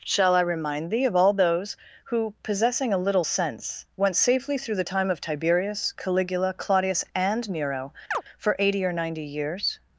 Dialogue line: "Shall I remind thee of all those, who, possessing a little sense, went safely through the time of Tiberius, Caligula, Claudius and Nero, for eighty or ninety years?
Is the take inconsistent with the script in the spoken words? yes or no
no